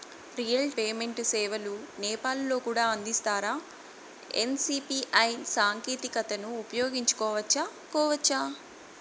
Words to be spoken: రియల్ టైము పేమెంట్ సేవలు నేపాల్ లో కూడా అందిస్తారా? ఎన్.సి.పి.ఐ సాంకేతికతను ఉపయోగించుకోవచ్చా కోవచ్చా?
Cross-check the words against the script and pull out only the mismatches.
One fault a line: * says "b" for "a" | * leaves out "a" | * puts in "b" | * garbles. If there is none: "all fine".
* leaves out "టైము"